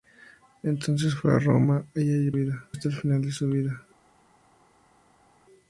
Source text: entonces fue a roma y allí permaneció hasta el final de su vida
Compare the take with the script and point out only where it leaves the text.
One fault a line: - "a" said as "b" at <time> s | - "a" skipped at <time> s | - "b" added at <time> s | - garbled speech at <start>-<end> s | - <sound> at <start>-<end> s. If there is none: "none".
- "permaneció" said as "vida" at 2.3 s